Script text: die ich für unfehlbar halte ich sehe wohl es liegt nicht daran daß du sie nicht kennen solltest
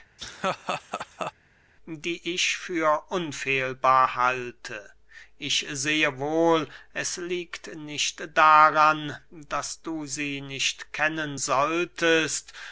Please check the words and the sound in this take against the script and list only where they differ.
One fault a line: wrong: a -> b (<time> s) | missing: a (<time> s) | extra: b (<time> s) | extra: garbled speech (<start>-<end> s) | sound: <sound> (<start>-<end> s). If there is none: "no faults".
sound: laugh (0.2-1.3 s)